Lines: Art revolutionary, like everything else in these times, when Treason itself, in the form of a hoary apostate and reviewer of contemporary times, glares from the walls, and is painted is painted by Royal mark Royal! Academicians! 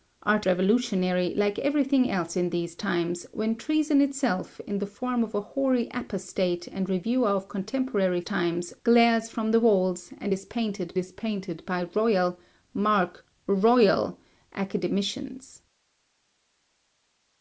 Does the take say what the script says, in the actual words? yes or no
yes